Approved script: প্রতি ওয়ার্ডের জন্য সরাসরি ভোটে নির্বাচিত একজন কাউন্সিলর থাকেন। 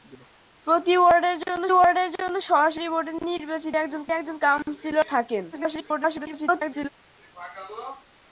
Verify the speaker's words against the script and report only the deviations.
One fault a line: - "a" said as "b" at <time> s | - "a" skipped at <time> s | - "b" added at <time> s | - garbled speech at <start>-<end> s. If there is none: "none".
- "ওয়ার্ডের জন্য" added at 1.7 s
- "একজন" added at 4.1 s
- garbled speech at 5.5-6.9 s